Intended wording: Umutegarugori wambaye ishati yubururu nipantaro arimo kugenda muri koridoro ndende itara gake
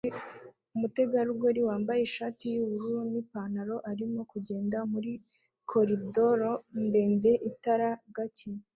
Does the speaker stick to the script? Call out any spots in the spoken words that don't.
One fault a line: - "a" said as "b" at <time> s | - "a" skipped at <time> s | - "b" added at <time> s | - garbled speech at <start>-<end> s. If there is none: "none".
none